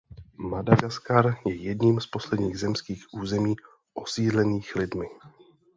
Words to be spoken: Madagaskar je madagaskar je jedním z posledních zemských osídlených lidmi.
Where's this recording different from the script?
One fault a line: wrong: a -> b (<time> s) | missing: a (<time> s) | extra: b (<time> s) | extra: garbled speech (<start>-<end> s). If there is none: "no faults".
missing: madagaskar je (1.6 s)
extra: území (3.1 s)